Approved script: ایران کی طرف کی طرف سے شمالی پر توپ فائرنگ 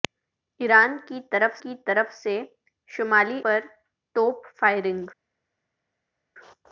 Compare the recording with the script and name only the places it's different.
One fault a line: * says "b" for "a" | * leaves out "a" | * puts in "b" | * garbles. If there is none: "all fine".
all fine